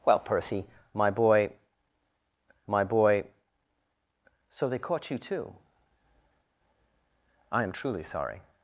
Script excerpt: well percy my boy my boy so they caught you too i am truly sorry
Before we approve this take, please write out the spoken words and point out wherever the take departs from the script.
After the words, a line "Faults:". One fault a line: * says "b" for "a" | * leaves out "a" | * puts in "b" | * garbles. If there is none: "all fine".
well percy my boy my boy so they caught you too i am truly sorry
Faults:
all fine